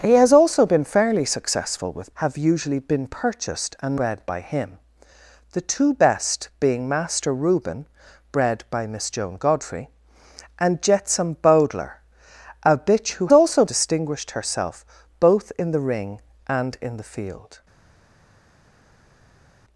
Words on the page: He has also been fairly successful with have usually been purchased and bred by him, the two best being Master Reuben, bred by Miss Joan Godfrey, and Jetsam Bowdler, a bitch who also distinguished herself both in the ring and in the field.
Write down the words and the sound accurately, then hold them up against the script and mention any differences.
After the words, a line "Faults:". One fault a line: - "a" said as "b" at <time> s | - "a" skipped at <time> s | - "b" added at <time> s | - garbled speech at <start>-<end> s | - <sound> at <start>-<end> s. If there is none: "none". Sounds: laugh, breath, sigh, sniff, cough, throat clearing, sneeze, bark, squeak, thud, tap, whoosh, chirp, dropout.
He has also been fairly successful with have usually been purchased and bred by him, the two best being Master Reuben, bred by Miss Joan Godfrey, and Jetsam Bowdler, a bitch who also distinguished herself both in the ring and in the field.
Faults:
none